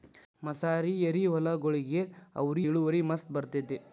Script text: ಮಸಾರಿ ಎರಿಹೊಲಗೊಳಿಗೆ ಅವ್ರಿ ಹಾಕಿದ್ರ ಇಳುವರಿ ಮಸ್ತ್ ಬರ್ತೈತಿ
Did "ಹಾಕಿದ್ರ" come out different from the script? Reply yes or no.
yes